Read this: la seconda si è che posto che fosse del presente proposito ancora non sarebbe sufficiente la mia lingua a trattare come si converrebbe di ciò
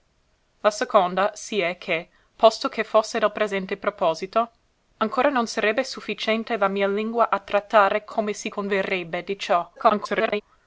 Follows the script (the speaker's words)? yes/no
no